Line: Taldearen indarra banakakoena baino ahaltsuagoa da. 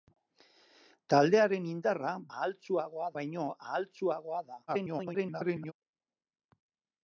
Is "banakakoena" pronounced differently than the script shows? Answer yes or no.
yes